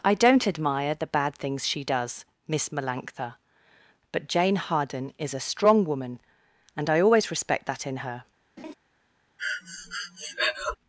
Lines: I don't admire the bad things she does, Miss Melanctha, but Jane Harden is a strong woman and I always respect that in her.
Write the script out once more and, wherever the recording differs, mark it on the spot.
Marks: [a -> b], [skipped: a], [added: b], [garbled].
I don't admire the bad things she does, Miss Melanctha, but Jane Harden is a strong woman and I always respect that in her.